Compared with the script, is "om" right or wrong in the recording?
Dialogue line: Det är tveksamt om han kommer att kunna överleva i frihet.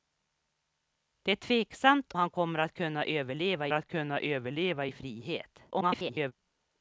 wrong